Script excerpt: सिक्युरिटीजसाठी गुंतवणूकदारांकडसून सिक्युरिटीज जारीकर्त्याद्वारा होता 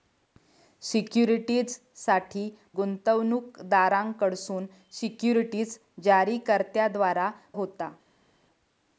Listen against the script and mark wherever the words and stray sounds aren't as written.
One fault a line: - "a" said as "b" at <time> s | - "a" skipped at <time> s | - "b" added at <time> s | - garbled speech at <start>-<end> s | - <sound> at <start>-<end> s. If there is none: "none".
none